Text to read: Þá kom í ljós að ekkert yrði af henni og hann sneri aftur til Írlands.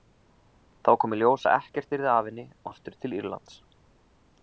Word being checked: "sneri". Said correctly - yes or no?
no